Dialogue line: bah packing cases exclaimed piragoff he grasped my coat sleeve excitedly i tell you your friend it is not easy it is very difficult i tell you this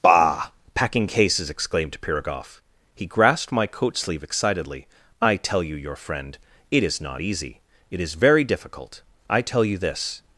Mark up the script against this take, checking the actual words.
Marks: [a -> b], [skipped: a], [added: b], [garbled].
bah packing cases exclaimed piragoff he grasped my coat sleeve excitedly i tell you your friend it is not easy it is very difficult i tell you this